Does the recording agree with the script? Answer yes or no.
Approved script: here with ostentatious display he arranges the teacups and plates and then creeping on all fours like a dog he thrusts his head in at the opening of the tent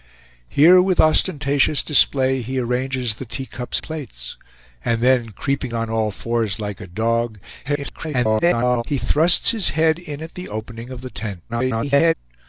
no